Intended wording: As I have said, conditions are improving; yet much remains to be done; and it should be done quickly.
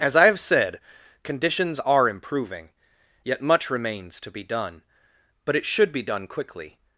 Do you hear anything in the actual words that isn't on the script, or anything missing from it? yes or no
yes